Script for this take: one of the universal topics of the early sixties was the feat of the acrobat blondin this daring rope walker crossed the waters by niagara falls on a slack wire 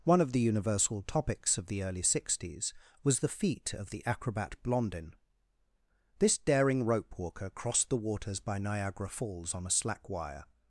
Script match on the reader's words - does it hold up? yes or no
yes